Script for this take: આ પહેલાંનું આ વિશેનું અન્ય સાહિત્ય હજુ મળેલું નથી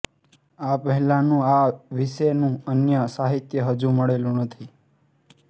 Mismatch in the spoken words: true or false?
false